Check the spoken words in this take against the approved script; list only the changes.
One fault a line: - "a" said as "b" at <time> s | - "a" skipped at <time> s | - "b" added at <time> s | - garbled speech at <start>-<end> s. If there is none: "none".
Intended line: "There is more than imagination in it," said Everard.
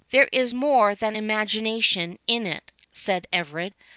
none